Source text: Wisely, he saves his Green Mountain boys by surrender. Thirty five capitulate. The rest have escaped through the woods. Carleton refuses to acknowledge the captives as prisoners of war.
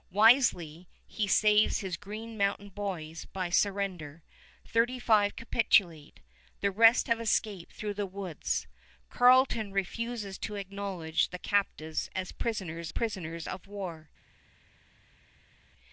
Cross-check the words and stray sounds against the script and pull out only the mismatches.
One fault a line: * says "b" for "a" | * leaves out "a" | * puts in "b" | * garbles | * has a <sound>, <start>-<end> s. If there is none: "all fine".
* puts in "prisoners"